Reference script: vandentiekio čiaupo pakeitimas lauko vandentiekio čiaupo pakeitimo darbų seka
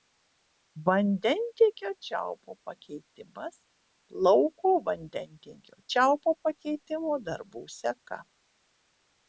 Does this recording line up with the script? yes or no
yes